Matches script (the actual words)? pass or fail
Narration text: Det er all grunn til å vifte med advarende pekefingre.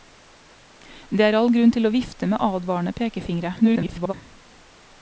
fail